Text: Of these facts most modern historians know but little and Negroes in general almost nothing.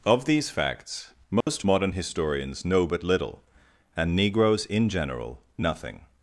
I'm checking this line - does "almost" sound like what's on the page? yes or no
no